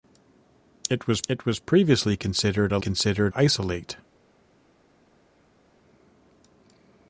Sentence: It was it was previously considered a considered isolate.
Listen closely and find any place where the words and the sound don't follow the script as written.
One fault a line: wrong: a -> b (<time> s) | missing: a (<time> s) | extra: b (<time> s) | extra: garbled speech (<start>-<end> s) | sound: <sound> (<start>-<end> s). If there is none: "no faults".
no faults